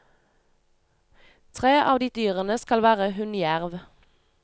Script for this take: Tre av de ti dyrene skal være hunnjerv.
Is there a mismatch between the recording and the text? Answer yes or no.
yes